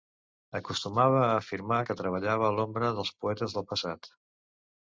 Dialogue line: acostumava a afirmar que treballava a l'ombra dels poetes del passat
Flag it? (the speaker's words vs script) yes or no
no